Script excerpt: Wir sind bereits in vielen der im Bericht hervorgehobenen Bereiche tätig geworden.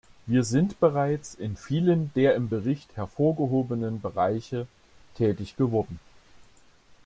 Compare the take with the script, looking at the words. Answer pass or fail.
pass